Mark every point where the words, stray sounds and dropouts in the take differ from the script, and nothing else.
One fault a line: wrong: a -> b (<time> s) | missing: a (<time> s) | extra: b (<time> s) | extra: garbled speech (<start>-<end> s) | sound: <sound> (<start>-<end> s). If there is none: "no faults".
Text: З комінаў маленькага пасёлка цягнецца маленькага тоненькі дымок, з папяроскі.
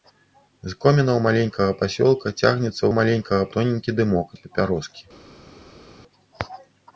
no faults